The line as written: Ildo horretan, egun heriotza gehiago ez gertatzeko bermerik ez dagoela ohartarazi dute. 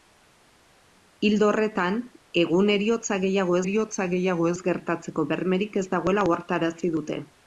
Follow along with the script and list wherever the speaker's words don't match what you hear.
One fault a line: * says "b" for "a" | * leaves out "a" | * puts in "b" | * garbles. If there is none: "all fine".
* puts in "heriotza gehiago"